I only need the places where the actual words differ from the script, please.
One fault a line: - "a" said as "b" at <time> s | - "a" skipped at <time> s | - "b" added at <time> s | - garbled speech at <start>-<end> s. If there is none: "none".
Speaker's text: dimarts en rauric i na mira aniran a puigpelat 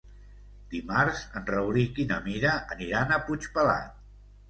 none